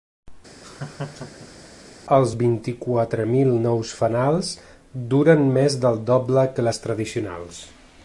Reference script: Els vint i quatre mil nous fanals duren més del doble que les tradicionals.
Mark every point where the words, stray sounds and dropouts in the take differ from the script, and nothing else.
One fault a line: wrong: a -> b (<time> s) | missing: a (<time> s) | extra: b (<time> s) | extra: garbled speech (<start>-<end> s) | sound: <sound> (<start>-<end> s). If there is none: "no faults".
sound: laugh (0.6-1.7 s)